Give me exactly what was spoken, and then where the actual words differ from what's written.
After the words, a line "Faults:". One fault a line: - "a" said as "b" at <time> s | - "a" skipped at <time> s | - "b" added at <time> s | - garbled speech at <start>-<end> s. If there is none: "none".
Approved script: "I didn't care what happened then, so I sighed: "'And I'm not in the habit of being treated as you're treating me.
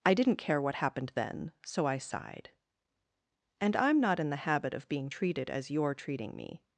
"I didn't care what happened then, so I sighed: "'And I'm not in the habit of being treated as you're treating me.
Faults:
none